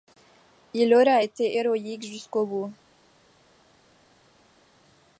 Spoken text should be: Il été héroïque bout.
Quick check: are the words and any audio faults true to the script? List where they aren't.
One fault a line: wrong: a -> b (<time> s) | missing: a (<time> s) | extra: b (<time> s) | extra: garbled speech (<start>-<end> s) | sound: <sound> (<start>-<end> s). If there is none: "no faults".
extra: aura (0.9 s)
extra: jusqu'au (2.0 s)